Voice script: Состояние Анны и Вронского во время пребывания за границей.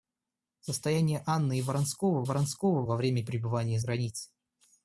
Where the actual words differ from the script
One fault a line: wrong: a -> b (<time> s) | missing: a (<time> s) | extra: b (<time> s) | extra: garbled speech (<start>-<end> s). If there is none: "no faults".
extra: Вронского (2.2 s)
missing: за (3.8 s)